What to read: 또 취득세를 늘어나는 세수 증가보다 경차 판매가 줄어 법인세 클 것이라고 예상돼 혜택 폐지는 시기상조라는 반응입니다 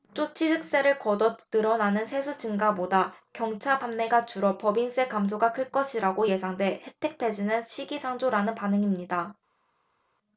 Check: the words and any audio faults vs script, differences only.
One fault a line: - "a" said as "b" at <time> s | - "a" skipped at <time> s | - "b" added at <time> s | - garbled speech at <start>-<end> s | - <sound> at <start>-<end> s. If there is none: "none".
- "거둬" added at 1.0 s
- "감소가" added at 5.1 s